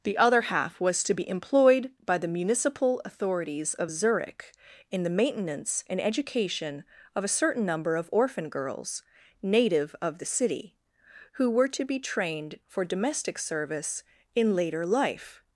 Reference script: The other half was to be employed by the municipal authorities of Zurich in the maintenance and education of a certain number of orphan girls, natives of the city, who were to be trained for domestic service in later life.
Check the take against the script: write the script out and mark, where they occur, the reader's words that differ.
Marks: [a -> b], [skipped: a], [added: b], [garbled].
The other half was to be employed by the municipal authorities of Zurich in the maintenance and education of a certain number of orphan girls, [natives -> native] of the city, who were to be trained for domestic service in later life.